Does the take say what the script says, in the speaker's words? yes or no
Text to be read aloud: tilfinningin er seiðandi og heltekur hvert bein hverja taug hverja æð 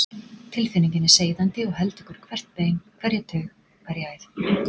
yes